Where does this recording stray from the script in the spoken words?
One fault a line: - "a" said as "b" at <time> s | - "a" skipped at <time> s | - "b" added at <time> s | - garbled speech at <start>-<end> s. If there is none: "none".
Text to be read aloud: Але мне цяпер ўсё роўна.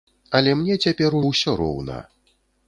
none